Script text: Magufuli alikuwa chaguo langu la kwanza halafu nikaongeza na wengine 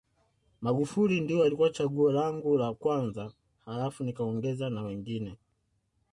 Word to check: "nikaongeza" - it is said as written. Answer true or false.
true